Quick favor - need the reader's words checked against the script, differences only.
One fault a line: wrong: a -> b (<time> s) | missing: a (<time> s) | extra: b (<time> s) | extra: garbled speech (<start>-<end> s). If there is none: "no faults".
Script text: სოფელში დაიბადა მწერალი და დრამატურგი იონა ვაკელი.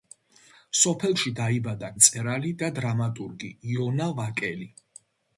no faults